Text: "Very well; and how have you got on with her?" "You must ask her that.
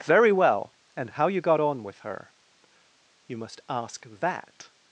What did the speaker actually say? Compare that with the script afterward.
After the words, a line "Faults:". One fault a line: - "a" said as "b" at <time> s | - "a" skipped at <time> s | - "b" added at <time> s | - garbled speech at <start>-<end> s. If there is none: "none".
"Very well; and how you got on with her?" "You must ask that.
Faults:
- "have" skipped at 1.3 s
- "her" skipped at 4.1 s